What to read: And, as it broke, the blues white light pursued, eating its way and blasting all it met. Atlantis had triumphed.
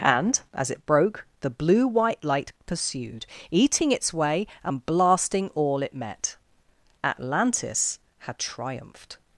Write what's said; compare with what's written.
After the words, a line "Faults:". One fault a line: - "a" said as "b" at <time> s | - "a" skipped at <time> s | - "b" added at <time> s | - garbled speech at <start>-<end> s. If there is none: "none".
And, as it broke, the blue white light pursued, eating its way and blasting all it met. Atlantis had triumphed.
Faults:
- "blues" said as "blue" at 1.5 s